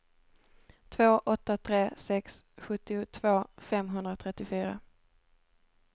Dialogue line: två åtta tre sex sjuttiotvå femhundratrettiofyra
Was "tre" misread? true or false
false